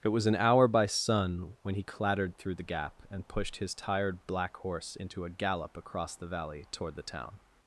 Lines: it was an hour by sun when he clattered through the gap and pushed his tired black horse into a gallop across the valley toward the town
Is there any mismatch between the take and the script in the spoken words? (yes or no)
no